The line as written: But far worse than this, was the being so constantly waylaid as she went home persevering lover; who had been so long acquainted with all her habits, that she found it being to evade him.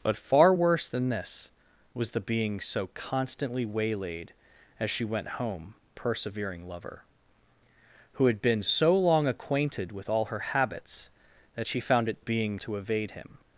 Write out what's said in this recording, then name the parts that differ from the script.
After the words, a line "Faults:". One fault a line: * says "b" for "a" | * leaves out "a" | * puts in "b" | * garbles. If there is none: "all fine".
But far worse than this, was the being so constantly waylaid as she went home persevering lover; who had been so long acquainted with all her habits, that she found it being to evade him.
Faults:
all fine